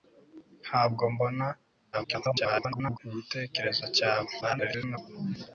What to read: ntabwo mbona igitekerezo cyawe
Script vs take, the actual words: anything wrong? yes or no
yes